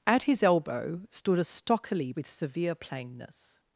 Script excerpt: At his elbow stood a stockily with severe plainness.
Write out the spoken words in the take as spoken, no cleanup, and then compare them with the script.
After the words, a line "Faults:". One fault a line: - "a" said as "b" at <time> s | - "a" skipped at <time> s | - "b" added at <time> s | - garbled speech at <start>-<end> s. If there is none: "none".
At his elbow stood a stockily with severe plainness.
Faults:
none